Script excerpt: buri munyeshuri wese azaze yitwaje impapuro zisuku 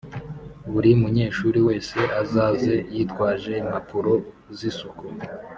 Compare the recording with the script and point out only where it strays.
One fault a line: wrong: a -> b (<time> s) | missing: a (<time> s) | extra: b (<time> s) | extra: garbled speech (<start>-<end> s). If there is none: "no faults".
no faults